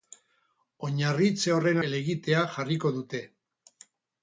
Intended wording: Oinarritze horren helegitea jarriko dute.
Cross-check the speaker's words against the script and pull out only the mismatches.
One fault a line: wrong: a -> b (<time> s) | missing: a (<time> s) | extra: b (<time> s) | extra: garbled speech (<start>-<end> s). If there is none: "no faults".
no faults